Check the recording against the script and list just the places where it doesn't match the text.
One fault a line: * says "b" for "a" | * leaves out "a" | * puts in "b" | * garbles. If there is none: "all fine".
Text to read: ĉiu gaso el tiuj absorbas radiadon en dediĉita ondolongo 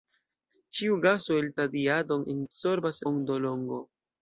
* leaves out "tiuj absorbas"
* says "absorbas" for "dediĉita"